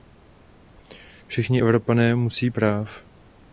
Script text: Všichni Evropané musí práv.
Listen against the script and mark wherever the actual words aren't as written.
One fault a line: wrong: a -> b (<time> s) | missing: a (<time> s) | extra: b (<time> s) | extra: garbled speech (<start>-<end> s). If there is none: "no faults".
no faults